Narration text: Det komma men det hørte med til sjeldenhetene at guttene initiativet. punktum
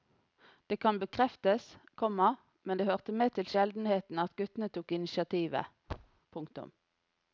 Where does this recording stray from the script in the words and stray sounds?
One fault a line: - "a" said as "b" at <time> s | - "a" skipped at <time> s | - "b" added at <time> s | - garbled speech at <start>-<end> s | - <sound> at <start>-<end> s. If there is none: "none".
- "kan bekreftes" added at 0.8 s
- "tok" added at 4.8 s
- thud at 5.9-6.2 s